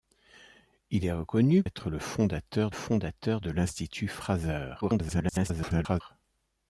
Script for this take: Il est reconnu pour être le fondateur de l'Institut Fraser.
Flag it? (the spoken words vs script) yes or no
yes